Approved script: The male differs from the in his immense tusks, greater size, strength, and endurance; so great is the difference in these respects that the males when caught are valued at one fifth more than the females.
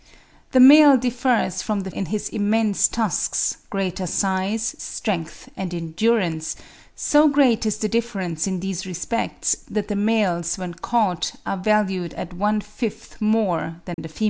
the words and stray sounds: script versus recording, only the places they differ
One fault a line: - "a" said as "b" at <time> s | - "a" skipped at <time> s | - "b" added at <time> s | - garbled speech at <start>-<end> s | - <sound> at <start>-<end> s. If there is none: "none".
- dropout at 13.9-14.0 s